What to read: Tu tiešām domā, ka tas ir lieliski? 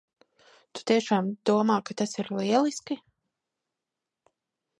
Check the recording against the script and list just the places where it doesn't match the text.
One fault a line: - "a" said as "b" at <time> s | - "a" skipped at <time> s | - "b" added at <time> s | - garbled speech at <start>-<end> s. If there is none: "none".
none